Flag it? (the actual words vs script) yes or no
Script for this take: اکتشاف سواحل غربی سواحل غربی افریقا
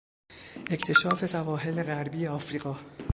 yes